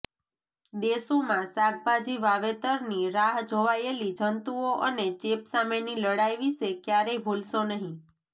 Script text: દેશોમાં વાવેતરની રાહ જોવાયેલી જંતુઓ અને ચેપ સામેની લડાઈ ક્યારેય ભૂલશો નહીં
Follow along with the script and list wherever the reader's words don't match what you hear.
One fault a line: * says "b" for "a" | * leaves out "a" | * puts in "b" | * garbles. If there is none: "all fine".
* puts in "શાકભાજી"
* puts in "વિશે"